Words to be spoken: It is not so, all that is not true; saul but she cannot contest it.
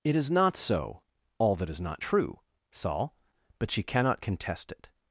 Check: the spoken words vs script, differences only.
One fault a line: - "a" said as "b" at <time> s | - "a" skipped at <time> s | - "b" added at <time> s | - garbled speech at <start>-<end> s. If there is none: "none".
none